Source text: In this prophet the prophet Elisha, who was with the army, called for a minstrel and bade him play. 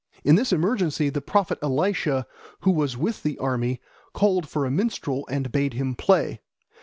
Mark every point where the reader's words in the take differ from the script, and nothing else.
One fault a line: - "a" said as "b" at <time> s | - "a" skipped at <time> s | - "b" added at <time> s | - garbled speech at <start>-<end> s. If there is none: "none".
- "prophet" said as "emergency" at 0.5 s